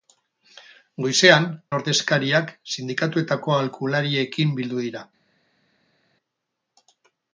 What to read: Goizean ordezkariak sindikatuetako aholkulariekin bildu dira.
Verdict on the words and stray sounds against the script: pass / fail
pass